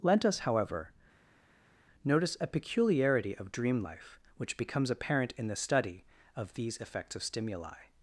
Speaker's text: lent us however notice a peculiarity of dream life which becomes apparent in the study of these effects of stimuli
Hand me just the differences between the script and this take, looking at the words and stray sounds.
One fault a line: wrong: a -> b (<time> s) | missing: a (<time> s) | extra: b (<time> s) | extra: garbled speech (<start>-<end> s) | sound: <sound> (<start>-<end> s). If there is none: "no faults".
no faults